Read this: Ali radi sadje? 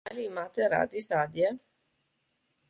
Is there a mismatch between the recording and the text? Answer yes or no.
yes